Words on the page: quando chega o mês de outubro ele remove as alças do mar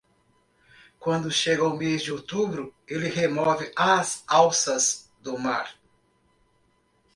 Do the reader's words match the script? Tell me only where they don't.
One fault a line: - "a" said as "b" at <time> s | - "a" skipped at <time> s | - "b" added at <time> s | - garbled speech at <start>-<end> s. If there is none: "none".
none